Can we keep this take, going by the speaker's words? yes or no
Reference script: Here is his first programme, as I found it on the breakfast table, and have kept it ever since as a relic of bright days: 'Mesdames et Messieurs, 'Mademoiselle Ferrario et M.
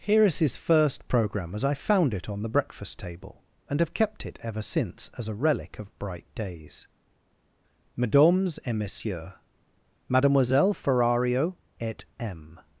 yes